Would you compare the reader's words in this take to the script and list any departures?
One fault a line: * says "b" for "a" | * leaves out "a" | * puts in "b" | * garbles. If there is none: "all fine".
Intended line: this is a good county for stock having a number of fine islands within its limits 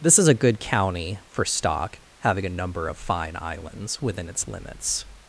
all fine